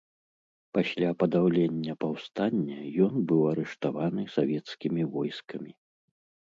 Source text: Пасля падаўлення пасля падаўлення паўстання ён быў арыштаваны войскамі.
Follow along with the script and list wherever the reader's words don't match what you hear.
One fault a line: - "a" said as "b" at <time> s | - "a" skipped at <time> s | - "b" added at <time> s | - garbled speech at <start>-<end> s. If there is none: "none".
- "пасля падаўлення" skipped at 1.9 s
- "савецкімі" added at 4.4 s